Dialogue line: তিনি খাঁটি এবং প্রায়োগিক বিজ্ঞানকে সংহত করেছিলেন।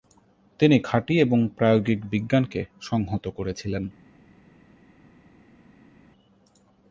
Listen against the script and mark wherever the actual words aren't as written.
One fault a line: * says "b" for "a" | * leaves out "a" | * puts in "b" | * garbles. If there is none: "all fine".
all fine